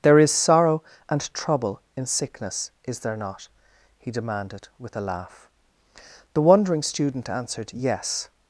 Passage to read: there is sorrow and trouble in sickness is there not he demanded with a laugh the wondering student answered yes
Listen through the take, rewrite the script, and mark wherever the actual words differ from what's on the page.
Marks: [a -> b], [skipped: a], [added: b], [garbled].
there is sorrow and trouble in sickness is there not he demanded with a laugh the wondering student answered yes